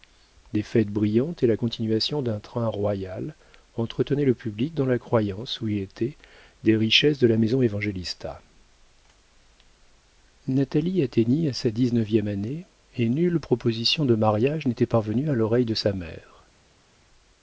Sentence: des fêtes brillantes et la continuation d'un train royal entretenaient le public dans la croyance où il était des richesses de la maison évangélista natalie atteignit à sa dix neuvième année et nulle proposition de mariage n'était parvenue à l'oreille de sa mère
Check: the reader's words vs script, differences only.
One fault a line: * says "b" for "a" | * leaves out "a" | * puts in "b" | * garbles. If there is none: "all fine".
all fine